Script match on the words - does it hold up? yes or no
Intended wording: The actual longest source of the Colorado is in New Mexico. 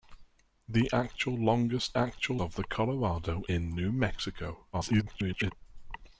no